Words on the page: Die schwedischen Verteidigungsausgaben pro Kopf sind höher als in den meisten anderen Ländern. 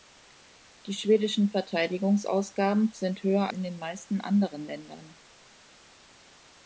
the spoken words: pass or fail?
fail